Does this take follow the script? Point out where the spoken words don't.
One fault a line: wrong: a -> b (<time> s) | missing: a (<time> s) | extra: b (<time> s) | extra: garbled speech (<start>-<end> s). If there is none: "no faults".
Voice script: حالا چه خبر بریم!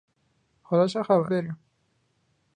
no faults